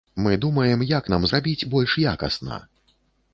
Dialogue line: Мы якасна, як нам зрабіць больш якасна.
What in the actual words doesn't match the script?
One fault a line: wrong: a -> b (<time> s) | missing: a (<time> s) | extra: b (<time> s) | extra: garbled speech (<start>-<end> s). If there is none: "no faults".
wrong: якасна -> думаем (0.5 s)